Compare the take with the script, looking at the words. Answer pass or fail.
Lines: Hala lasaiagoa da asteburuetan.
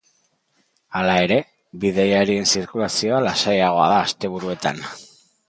fail